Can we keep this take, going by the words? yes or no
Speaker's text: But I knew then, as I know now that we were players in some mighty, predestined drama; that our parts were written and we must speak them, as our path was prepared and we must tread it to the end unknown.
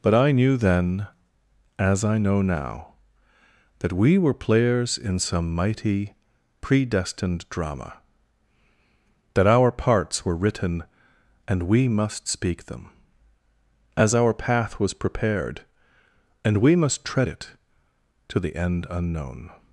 yes